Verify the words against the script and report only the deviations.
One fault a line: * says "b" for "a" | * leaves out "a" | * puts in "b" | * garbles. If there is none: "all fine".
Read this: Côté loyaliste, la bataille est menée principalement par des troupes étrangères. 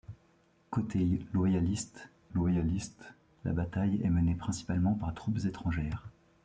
* puts in "loyaliste"
* leaves out "des"